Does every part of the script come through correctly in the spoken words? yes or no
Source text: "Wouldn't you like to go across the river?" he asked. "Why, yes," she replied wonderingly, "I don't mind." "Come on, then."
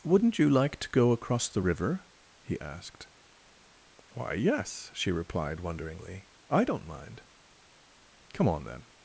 yes